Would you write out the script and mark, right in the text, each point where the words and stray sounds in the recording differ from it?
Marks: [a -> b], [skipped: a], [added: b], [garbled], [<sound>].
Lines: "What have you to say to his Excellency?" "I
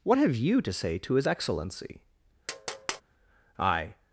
"What have you to say to his Excellency?" [tap] "I